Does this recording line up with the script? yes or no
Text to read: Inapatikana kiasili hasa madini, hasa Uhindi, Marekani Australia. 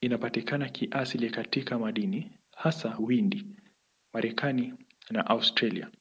no